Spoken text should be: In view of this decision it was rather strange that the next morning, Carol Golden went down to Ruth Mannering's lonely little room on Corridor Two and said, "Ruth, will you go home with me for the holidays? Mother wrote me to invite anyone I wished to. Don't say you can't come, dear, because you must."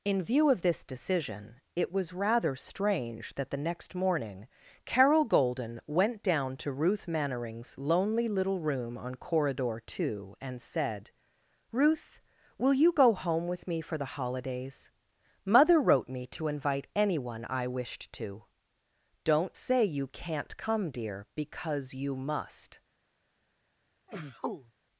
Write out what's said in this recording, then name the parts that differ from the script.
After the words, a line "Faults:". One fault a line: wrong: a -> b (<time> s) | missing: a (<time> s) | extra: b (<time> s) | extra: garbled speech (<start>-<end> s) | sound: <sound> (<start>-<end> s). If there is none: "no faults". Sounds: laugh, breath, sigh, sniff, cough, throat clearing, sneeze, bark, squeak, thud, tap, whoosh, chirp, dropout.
In view of this decision it was rather strange that the next morning, Carol Golden went down to Ruth Mannering's lonely little room on Corridor Two and said, "Ruth, will you go home with me for the holidays? Mother wrote me to invite anyone I wished to. Don't say you can't come, dear, because you must."
Faults:
sound: sneeze (24.1-24.7 s)